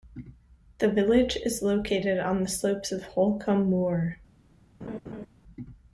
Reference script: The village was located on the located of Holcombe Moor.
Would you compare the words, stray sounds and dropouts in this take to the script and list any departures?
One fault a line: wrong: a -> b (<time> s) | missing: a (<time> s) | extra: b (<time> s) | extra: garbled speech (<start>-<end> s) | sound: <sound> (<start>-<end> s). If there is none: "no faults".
wrong: was -> is (1.4 s)
wrong: located -> slopes (2.5 s)
sound: laugh (4.8-5.3 s)